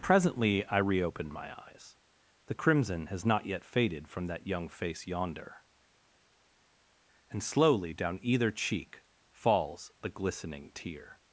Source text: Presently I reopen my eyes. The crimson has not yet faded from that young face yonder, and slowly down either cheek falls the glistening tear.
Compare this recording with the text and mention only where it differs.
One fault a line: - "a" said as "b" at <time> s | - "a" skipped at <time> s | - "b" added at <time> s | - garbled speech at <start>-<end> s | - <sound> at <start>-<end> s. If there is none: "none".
none